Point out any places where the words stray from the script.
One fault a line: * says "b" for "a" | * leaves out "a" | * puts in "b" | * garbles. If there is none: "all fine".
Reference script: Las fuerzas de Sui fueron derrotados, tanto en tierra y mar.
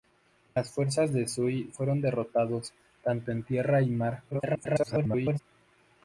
* garbles